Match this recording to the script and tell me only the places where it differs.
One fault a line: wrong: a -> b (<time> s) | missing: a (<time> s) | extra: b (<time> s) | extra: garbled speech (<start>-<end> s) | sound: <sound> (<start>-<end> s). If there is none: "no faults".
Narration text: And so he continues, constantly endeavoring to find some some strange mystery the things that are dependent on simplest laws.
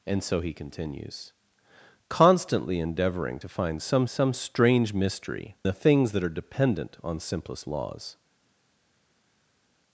no faults